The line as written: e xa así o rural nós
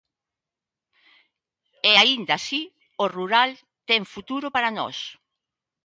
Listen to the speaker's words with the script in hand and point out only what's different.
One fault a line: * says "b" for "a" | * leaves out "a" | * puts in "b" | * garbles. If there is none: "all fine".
* says "aínda" for "xa"
* puts in "ten futuro para"